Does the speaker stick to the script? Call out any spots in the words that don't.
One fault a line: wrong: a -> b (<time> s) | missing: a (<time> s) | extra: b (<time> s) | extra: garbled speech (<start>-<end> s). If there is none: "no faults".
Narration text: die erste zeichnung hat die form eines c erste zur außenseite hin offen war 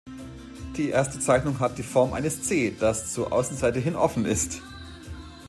wrong: erste -> das (2.8 s)
wrong: war -> ist (4.2 s)